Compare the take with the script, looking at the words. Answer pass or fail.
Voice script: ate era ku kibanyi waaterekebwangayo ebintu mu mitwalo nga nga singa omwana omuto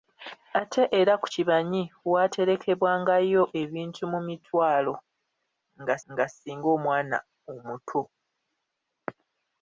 pass